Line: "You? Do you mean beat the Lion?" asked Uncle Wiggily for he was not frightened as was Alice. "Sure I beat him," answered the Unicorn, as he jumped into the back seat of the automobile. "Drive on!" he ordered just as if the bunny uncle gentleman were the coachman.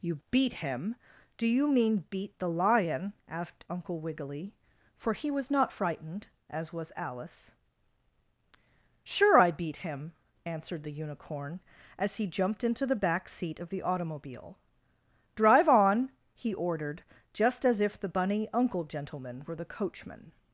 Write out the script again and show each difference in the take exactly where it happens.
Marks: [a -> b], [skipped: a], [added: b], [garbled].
"You? [added: beat him] Do you mean beat the Lion?" asked Uncle Wiggily for he was not frightened as was Alice. "Sure I beat him," answered the Unicorn, as he jumped into the back seat of the automobile. "Drive on!" he ordered just as if the bunny uncle gentleman were the coachman.